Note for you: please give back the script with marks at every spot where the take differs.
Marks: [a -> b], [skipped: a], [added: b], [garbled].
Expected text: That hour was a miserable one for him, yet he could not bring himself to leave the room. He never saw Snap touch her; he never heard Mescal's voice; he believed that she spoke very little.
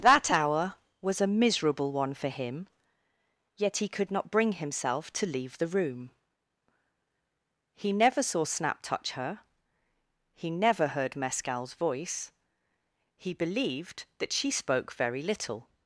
That hour was a miserable one for him, yet he could not bring himself to leave the room. He never saw Snap touch her; he never heard Mescal's voice; he believed that she spoke very little.